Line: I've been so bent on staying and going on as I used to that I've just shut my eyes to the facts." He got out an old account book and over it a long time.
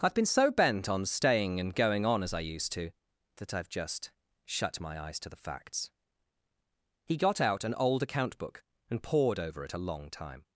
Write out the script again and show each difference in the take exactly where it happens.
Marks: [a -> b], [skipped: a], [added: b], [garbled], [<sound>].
I've been so bent on staying and going on as I used to that I've just shut my eyes to the facts." He got out an old account book and [added: pored] over it a long time.